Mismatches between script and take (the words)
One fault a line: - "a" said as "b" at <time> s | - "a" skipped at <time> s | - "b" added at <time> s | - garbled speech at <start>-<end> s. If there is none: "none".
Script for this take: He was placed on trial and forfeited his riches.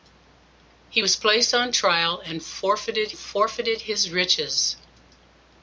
- "forfeited" added at 3.1 s